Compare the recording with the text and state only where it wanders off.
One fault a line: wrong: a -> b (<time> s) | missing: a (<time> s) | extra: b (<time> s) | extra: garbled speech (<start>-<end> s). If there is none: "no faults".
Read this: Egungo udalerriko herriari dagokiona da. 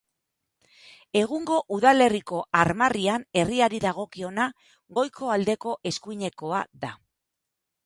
extra: armarrian (2.6 s)
extra: goiko aldeko eskuinekoa (5.0 s)